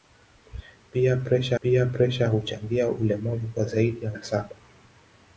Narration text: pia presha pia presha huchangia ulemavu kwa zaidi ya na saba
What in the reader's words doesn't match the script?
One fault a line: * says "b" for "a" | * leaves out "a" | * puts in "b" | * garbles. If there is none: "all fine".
all fine